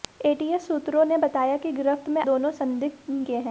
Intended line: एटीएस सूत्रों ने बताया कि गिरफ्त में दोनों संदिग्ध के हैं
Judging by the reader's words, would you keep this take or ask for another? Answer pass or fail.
pass